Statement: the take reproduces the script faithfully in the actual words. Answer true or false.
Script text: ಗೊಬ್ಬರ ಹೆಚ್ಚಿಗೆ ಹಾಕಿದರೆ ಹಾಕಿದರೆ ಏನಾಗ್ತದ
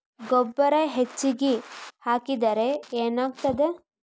false